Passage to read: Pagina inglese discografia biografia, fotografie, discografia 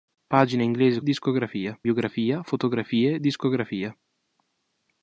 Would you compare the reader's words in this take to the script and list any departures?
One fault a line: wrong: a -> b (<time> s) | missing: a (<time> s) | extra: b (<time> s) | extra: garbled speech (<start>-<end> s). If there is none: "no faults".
no faults